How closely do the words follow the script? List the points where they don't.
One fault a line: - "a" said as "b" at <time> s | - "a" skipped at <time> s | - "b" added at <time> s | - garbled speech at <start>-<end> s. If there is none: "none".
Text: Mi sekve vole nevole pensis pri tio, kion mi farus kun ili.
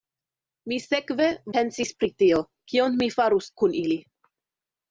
- "vole nevole" skipped at 1.3 s